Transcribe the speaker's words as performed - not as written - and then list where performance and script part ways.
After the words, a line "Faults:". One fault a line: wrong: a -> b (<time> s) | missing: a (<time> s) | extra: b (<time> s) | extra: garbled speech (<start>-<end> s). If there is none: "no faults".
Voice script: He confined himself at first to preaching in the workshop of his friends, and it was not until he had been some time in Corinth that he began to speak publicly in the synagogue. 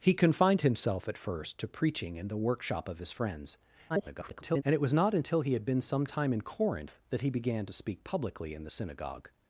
He confined himself at first to preaching in the workshop of his friends, [garbled] and it was not until he had been some time in Corinth that he began to speak publicly in the synagogue.
Faults:
extra: garbled speech (3.9-4.6 s)